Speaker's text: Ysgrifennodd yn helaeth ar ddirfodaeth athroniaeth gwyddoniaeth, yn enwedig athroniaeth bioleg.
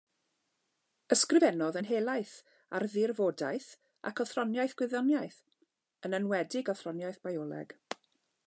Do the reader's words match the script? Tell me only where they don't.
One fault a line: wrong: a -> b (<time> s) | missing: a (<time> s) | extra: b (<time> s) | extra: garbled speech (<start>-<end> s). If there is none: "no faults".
extra: ac (4.1 s)